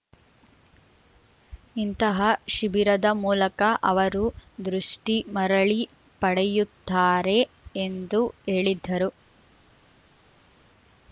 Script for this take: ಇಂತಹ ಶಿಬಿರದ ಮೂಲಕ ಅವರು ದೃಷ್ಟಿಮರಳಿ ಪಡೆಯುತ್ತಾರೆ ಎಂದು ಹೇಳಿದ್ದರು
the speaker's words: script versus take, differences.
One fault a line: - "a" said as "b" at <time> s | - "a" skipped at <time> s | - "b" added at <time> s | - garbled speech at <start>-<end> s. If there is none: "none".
none